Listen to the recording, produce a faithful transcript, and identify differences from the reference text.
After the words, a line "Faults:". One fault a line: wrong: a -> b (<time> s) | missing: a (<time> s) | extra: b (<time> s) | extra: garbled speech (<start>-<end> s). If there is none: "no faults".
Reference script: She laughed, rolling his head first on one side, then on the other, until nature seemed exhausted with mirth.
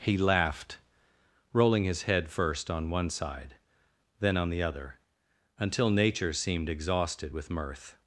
He laughed, rolling his head first on one side, then on the other, until nature seemed exhausted with mirth.
Faults:
wrong: She -> He (0.0 s)